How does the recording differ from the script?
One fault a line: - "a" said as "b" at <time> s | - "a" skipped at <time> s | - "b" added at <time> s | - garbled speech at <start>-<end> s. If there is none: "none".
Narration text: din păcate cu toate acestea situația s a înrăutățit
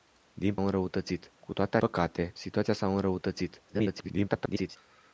- "păcate" said as "înrăutățit" at 0.6 s
- "acestea" said as "păcate" at 1.8 s
- garbled speech at 3.7-4.8 s